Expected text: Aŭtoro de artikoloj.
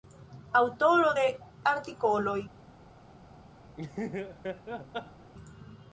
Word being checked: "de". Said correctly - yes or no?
yes